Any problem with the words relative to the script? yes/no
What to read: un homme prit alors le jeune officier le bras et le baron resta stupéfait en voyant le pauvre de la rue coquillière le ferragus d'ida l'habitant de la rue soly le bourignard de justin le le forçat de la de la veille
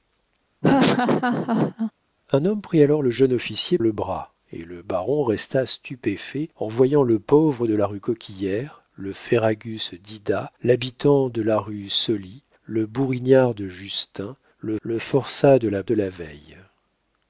no